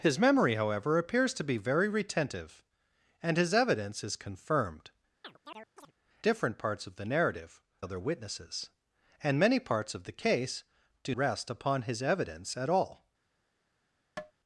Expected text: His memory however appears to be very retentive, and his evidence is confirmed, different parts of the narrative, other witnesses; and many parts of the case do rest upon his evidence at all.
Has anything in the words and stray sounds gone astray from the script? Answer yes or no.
yes